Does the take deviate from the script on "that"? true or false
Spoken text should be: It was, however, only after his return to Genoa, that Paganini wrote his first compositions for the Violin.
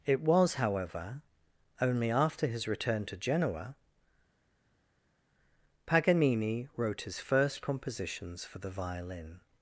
true